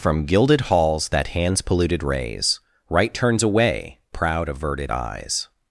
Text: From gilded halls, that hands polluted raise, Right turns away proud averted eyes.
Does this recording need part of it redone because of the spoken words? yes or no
no